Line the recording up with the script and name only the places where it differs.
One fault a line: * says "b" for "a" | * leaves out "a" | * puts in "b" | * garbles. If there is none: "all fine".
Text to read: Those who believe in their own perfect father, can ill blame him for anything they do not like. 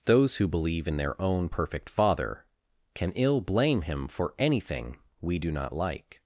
* says "we" for "they"